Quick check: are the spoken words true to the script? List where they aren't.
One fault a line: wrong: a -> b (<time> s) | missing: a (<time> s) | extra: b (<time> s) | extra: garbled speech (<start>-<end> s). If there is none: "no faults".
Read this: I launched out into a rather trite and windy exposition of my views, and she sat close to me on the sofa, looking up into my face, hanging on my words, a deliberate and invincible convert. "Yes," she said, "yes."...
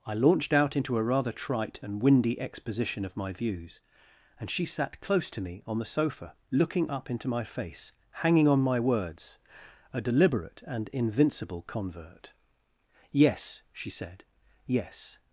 no faults